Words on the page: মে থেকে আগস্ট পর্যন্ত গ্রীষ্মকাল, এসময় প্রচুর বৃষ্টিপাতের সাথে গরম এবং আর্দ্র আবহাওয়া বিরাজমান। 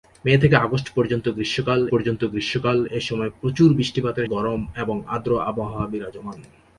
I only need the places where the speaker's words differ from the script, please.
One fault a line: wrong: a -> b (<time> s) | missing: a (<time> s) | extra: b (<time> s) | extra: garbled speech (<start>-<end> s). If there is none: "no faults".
extra: পর্যন্ত গ্রীষ্মকাল (1.9 s)
missing: সাথে (4.3 s)